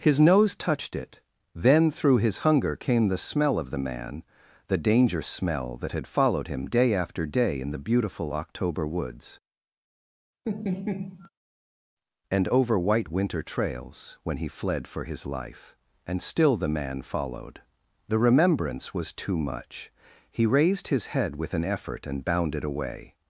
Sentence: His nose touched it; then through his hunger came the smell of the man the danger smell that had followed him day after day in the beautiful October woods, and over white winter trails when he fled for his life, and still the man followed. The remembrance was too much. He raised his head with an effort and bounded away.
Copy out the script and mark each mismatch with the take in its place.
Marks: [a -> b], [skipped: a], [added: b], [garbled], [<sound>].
His nose touched it; then through his hunger came the smell of the man the danger smell that had followed him day after day in the beautiful October woods, [laugh] and over white winter trails when he fled for his life, and still the man followed. The remembrance was too much. He raised his head with an effort and bounded away.